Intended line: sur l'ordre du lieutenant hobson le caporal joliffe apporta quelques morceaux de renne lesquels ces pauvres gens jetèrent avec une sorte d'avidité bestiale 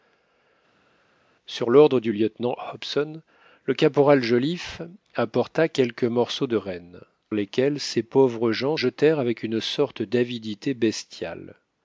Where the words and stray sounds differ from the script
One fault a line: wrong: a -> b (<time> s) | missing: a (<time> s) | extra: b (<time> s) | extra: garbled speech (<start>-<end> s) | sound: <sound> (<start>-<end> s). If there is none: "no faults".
no faults